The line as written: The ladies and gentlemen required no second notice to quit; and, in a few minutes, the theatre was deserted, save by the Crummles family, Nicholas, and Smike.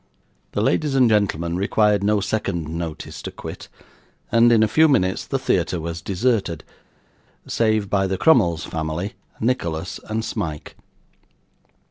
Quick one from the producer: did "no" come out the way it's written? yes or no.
yes